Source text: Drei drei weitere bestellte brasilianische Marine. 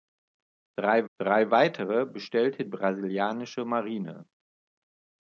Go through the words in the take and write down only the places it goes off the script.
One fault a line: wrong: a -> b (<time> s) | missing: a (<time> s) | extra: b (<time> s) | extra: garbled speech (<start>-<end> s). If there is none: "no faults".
no faults